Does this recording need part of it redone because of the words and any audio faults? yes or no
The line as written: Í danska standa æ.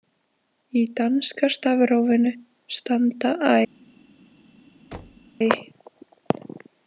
yes